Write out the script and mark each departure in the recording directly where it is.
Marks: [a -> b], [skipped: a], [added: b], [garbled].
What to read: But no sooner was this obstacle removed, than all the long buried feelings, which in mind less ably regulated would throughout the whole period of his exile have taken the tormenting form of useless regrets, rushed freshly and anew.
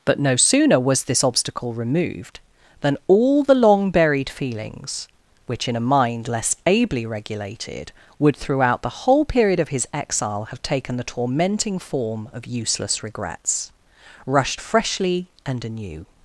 But no sooner was this obstacle removed, than all the long buried feelings, which in [added: a] mind less ably regulated would throughout the whole period of his exile have taken the tormenting form of useless regrets, rushed freshly and anew.